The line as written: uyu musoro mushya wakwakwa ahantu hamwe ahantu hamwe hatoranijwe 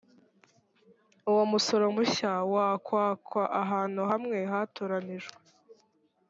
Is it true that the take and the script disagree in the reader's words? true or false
true